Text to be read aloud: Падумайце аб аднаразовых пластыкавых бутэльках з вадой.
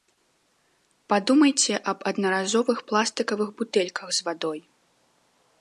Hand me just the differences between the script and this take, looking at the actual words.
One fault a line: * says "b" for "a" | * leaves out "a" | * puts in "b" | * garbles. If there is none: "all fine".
all fine